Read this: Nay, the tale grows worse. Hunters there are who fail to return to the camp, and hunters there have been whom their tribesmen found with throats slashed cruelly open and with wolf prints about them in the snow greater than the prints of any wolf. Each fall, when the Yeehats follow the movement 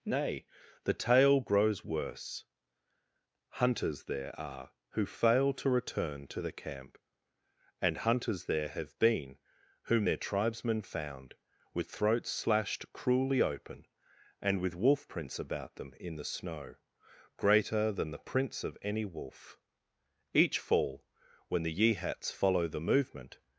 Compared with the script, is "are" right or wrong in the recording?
right